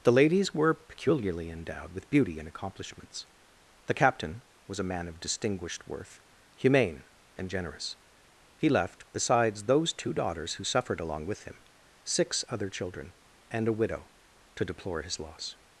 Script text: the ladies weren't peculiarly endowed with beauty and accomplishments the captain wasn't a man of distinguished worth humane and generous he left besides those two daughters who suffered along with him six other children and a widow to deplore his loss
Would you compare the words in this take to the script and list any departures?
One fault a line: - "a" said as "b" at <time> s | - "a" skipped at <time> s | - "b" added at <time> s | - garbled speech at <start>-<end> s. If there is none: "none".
- "weren't" said as "were" at 0.5 s
- "wasn't" said as "was" at 4.7 s